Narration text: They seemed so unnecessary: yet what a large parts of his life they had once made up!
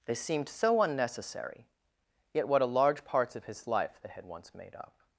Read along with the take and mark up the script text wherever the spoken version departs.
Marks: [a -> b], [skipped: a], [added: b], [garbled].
They seemed so unnecessary: yet what a large parts of his life they had once made up!